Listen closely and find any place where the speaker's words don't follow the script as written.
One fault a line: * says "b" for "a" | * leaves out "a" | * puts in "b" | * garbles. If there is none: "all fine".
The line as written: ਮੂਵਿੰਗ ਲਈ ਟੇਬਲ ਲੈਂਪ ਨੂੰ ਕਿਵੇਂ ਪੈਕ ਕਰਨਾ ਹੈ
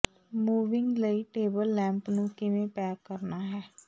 all fine